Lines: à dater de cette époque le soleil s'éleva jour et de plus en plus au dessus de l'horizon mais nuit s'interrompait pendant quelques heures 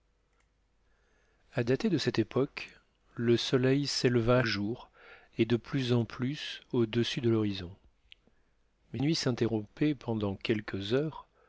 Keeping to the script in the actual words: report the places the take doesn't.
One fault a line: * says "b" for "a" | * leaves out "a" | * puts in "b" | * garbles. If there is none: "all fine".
all fine